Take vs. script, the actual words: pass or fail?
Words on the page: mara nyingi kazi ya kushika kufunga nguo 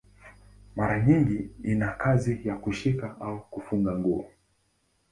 fail